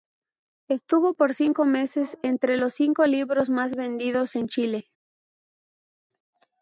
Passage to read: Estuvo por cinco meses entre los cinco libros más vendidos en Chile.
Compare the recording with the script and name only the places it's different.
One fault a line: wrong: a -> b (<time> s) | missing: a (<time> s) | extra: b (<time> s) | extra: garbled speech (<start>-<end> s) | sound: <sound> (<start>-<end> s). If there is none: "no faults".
no faults